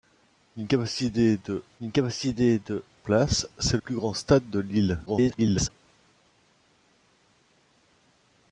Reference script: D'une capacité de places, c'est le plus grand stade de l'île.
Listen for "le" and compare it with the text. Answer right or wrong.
wrong